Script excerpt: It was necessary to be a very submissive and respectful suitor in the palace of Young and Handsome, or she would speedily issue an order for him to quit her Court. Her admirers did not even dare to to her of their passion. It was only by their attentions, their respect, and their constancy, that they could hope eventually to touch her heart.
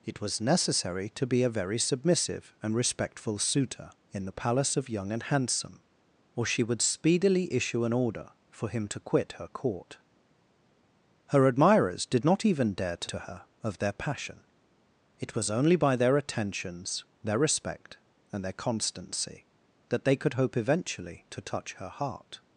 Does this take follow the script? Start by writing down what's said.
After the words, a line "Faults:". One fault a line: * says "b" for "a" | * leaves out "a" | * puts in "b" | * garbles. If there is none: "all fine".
It was necessary to be a very submissive and respectful suitor in the palace of Young and Handsome, or she would speedily issue an order for him to quit her Court. Her admirers did not even dare to to her of their passion. It was only by their attentions, their respect, and their constancy, that they could hope eventually to touch her heart.
Faults:
all fine